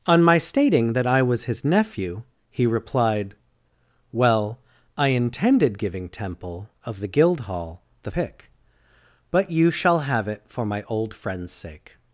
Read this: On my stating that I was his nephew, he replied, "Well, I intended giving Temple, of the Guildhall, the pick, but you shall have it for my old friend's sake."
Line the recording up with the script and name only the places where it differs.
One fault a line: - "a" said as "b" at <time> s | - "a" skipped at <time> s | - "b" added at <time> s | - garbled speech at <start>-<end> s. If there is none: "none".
none